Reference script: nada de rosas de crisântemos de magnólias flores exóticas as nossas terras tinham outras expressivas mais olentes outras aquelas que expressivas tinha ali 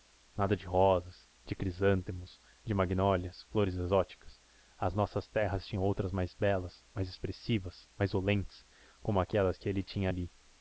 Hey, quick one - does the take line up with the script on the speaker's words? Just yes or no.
no